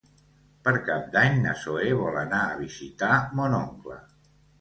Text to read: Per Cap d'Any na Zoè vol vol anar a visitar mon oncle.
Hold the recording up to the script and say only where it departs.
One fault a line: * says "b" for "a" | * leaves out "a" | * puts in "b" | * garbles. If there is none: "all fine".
* leaves out "vol"